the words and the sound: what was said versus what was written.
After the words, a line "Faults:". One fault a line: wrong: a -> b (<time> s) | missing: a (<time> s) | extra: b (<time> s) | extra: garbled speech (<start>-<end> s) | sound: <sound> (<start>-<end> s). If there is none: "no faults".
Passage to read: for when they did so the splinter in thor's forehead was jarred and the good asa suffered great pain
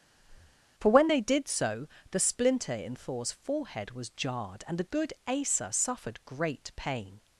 for when they did so the splinter in thor's forehead was jarred and the good asa suffered great pain
Faults:
sound: breath (0.2-0.6 s)